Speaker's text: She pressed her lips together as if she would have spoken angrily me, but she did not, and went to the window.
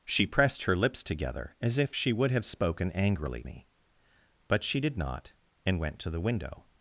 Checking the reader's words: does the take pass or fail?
pass